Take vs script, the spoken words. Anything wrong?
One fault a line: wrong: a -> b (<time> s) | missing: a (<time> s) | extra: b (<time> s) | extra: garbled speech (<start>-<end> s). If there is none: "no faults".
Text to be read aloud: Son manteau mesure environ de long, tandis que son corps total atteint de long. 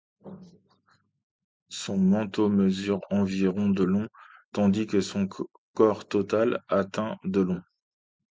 no faults